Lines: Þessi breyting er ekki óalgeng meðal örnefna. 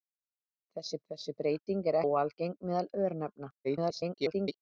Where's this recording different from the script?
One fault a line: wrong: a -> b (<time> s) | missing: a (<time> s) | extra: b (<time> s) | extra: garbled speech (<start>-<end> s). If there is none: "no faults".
extra: þessi (1.1 s)
missing: ekki (2.0 s)
extra: garbled speech (3.6-4.6 s)